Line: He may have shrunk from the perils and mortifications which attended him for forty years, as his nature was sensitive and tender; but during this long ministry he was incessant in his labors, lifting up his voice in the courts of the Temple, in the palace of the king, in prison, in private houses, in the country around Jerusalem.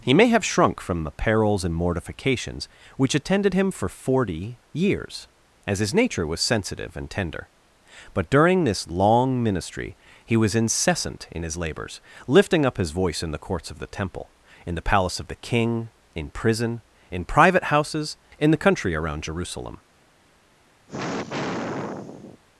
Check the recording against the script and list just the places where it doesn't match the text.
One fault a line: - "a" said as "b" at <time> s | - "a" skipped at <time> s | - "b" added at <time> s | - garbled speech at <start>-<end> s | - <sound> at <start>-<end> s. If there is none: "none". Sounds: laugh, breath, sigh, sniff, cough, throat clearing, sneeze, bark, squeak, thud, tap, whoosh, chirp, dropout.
- sigh at 20.9-22.4 s